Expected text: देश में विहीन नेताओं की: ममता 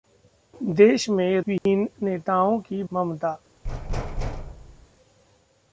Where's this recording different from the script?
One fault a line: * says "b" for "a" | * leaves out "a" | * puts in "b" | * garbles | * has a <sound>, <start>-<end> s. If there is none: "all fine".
* has a dropout, 1.6-1.7 s
* has a thud, 3.6-4.9 s